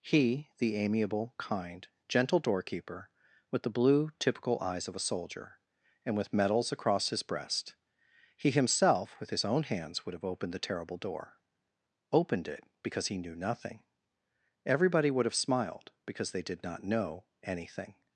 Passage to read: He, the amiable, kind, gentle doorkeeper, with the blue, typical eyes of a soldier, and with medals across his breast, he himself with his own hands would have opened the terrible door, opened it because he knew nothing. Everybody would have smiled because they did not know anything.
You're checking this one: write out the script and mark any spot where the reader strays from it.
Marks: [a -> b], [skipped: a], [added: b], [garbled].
He, the amiable, kind, gentle doorkeeper, with the blue, typical eyes of a soldier, and with medals across his breast, he himself with his own hands would have opened the terrible door, opened it because he knew nothing. Everybody would have smiled because they did not know anything.